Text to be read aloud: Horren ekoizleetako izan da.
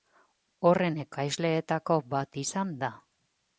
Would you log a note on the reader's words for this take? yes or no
yes